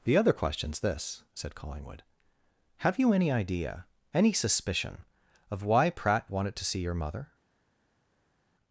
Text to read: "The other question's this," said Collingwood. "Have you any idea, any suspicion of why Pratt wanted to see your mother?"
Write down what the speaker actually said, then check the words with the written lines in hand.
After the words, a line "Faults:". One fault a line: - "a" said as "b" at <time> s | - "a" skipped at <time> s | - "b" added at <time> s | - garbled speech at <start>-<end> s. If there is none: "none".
"The other question's this," said Collingwood. "Have you any idea, any suspicion of why Pratt wanted to see your mother?"
Faults:
none